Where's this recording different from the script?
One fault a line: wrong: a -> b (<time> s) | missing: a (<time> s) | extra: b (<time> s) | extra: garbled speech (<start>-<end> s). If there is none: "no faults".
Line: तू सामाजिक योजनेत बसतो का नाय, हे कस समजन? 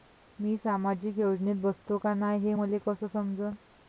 wrong: तू -> मी (0.4 s)
extra: मले (2.5 s)